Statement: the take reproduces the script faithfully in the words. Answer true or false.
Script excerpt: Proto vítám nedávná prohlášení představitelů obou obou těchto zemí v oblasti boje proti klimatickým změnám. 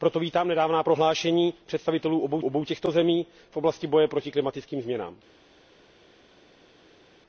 true